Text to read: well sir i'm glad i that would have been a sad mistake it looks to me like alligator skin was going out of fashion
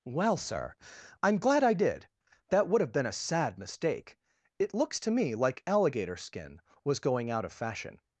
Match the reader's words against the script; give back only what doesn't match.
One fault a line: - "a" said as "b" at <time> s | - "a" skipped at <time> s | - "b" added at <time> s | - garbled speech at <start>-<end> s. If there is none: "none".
- "did" added at 1.8 s